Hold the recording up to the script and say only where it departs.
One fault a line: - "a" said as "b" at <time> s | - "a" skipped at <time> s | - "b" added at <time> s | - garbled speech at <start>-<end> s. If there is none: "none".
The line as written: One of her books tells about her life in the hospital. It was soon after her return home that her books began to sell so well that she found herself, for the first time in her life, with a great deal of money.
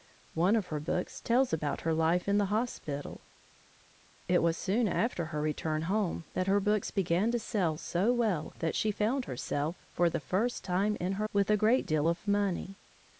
- "life" skipped at 11.3 s